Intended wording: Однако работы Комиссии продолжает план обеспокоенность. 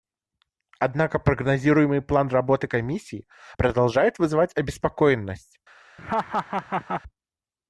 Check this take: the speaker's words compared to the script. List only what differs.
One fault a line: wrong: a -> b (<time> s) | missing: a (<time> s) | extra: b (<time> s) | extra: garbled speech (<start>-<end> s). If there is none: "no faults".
extra: прогнозируемый план (1.2 s)
wrong: план -> вызывать (4.2 s)